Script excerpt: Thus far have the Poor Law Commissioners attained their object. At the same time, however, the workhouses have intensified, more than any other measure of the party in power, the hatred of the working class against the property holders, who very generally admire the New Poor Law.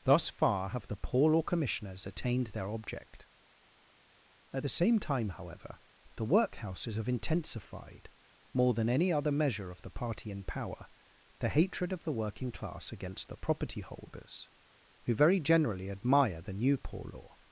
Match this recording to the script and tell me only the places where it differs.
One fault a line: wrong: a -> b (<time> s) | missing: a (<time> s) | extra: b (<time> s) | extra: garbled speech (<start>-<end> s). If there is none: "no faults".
no faults